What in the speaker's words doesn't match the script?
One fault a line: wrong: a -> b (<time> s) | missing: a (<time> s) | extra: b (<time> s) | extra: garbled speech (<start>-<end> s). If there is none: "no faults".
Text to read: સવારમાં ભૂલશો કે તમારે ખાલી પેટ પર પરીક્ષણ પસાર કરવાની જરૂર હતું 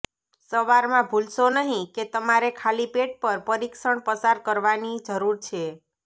extra: નહીં (1.6 s)
wrong: હતું -> છે (5.4 s)